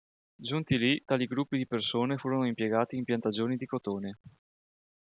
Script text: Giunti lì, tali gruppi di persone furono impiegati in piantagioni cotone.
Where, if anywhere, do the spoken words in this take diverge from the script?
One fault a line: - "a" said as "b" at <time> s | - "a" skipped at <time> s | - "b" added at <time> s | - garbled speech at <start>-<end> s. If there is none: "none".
- "di" added at 3.6 s